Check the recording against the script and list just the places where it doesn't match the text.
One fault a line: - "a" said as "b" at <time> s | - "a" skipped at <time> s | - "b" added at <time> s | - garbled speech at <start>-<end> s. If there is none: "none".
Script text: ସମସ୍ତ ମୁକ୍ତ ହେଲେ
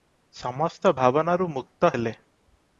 - "ଭାବନାରୁ" added at 0.9 s